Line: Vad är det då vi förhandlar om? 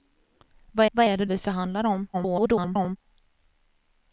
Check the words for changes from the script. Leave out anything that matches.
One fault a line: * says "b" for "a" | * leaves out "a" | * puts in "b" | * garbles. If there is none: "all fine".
* puts in "vad"
* leaves out "då"
* garbles